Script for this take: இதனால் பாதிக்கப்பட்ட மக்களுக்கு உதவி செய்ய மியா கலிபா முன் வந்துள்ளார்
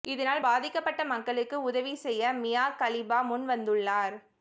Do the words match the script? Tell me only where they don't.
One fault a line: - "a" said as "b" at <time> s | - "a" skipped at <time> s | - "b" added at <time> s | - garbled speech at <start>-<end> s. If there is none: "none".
none